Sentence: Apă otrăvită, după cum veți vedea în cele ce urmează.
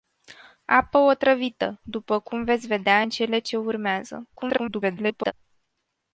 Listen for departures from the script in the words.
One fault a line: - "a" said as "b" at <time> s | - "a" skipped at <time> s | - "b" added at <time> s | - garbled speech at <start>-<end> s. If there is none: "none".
- garbled speech at 4.4-5.3 s